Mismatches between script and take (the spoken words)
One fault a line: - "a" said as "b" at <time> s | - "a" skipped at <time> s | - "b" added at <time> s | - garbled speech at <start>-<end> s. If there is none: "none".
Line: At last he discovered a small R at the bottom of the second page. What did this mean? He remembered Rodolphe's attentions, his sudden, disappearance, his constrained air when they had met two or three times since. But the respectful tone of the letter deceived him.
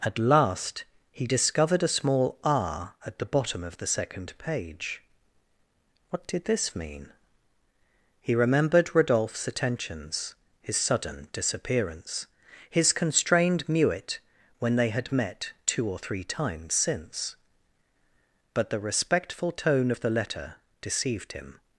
- "air" said as "muet" at 13.7 s